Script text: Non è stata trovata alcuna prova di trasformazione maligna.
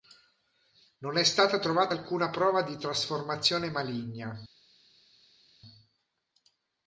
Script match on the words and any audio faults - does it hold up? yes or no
yes